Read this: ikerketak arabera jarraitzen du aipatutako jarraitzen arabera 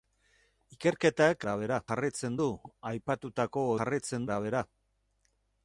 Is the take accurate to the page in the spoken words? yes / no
yes